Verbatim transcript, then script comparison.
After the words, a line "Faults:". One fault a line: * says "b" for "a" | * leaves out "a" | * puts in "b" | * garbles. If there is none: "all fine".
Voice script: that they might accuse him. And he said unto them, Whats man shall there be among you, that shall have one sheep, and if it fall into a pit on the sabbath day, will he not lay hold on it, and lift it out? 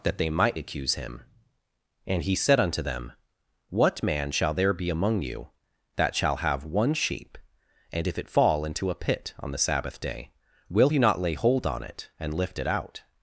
that they might accuse him. And he said unto them, What man shall there be among you, that shall have one sheep, and if it fall into a pit on the sabbath day, will he not lay hold on it, and lift it out?
Faults:
* says "What" for "Whats"